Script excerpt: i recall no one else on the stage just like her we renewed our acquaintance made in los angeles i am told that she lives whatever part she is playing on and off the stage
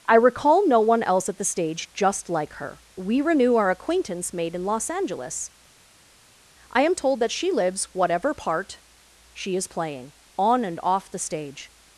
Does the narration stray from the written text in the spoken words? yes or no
yes